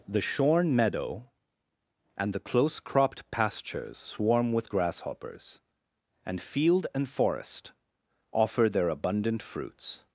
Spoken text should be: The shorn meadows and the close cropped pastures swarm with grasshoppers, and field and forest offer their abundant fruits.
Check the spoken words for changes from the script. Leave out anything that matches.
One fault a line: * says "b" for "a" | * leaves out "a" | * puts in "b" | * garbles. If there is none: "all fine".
* says "meadow" for "meadows"